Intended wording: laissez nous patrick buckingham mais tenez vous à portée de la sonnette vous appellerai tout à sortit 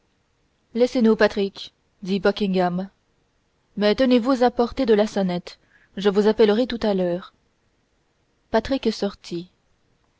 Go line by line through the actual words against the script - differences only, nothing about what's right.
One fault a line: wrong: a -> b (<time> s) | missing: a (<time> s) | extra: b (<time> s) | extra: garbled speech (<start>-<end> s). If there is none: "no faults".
extra: dit (2.0 s)
extra: je (6.0 s)
extra: l'heure patrick (7.0 s)